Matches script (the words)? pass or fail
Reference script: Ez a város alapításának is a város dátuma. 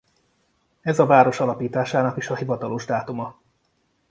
fail